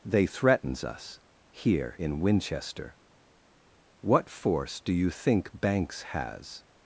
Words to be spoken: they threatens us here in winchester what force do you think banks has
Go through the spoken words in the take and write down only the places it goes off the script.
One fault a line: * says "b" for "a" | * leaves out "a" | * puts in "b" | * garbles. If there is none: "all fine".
all fine